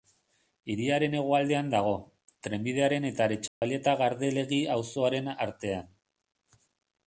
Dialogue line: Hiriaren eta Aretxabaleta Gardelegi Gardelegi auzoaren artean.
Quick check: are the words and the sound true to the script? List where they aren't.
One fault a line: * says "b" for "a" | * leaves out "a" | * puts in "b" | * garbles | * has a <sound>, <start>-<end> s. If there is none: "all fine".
* puts in "hegoaldean dago trenbidearen"
* has a dropout, 3.5-3.6 s
* leaves out "Gardelegi"